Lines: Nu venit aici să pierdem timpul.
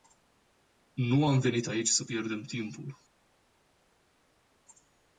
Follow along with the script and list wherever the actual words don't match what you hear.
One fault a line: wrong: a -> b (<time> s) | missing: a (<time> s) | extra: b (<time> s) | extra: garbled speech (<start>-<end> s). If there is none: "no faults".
extra: am (1.2 s)